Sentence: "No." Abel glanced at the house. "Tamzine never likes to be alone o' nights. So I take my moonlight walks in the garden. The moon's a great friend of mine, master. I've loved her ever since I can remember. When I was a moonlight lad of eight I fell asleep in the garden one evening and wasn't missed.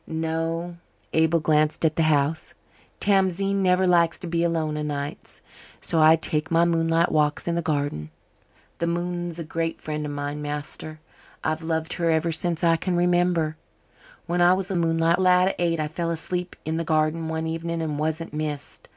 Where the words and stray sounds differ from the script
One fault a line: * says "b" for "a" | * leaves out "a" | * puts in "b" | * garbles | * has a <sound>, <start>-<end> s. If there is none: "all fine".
all fine